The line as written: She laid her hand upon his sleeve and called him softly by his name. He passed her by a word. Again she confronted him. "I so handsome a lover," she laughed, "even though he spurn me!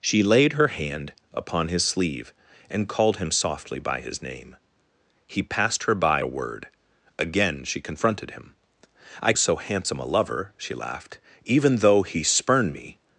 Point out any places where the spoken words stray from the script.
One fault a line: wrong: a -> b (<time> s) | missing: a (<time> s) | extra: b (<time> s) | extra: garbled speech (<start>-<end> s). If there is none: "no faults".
no faults